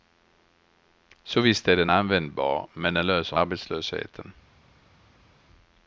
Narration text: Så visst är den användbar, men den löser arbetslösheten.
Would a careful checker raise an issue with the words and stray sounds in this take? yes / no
no